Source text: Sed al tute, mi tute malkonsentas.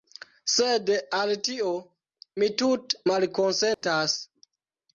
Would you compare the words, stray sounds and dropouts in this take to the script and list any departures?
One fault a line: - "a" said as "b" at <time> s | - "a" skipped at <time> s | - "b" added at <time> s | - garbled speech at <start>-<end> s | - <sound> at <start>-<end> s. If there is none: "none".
- "tute" said as "tio" at 1.5 s
- dropout at 3.7-3.8 s